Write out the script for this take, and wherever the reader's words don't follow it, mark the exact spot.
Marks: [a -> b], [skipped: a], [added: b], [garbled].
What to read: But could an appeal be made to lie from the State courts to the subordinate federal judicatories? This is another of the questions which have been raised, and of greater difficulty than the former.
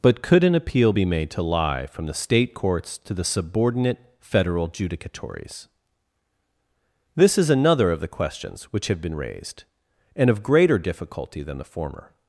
But could an appeal be made to lie from the State courts to the subordinate federal judicatories? This is another of the questions which have been raised, and of greater difficulty than the former.